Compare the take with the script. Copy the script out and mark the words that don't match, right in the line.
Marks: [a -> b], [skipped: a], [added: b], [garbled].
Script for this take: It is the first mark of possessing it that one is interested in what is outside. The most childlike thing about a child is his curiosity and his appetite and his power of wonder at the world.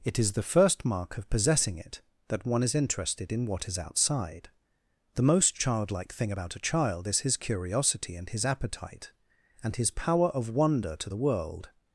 It is the first mark of possessing it that one is interested in what is outside. The most childlike thing about a child is his curiosity and his appetite and his power of wonder [at -> to] the world.